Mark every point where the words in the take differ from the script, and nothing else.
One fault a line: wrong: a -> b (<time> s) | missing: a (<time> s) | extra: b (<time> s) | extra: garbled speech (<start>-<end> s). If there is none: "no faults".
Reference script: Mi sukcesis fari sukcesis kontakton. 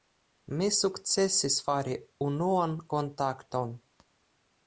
wrong: sukcesis -> unuan (2.3 s)